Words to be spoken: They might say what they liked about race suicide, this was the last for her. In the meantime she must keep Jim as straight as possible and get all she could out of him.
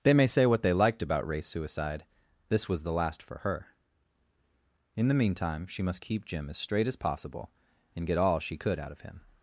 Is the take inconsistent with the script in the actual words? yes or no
yes